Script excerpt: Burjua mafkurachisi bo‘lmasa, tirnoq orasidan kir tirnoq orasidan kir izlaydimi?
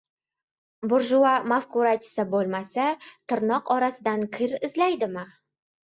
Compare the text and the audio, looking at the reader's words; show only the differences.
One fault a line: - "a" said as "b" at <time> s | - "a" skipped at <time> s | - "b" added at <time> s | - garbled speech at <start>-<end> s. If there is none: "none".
- "tirnoq orasidan kir" skipped at 4.6 s